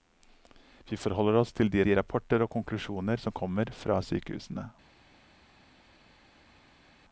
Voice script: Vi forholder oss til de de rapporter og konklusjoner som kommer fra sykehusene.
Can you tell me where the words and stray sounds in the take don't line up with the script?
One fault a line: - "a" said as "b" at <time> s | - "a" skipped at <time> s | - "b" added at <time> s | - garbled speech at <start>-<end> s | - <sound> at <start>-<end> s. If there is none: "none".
none